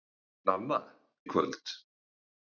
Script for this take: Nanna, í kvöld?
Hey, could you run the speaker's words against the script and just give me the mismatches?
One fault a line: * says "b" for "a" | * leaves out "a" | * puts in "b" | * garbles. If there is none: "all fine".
all fine